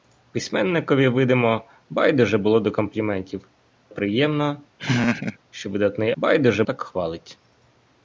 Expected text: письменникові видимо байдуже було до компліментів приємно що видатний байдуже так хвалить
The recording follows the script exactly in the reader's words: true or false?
true